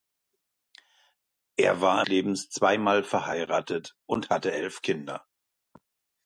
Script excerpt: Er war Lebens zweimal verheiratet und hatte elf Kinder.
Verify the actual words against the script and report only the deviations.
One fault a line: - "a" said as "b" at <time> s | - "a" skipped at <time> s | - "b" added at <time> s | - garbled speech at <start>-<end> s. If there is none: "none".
none